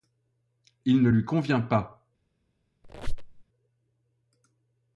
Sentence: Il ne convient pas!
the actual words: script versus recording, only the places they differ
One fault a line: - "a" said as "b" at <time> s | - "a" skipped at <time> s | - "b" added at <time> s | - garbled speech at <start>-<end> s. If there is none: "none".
- "lui" added at 1.1 s